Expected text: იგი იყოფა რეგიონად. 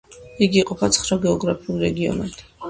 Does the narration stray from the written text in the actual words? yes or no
yes